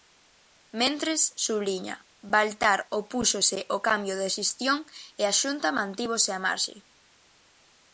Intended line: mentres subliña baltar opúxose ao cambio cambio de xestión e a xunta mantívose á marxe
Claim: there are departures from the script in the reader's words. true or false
true